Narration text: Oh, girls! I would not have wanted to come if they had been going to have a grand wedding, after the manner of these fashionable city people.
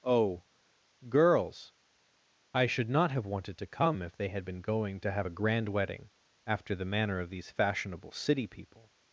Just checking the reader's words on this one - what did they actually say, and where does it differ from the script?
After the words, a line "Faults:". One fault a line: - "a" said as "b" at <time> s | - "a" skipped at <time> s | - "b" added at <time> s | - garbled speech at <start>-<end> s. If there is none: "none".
Oh, girls! I should not have wanted to come if they had been going to have a grand wedding, after the manner of these fashionable city people.
Faults:
- "would" said as "should" at 2.6 s